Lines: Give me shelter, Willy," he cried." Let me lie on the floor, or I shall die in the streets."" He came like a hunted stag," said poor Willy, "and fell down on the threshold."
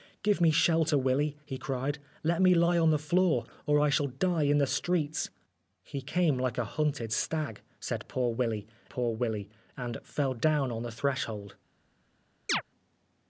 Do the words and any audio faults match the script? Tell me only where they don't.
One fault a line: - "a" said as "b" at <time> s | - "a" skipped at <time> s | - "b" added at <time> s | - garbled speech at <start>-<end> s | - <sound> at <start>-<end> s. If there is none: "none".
- "poor Willy" added at 8.9 s
- chirp at 12.5-12.6 s